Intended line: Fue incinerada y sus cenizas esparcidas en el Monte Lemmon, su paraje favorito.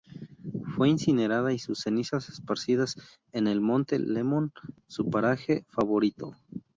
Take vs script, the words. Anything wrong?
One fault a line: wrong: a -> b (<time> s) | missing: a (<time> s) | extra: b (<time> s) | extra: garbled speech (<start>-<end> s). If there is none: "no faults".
no faults